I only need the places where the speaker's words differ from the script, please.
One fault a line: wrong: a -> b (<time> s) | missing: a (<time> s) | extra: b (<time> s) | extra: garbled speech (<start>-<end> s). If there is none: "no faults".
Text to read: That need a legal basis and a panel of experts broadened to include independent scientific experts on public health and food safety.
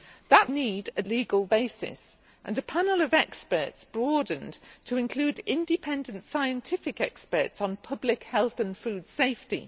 no faults